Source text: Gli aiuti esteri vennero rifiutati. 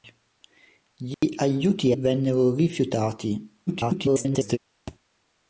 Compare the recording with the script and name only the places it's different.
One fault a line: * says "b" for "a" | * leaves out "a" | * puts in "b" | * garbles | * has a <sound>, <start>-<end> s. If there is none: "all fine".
* has a dropout, 1.1-1.2 s
* leaves out "esteri"
* garbles
* has a thud, 4.9-5.0 s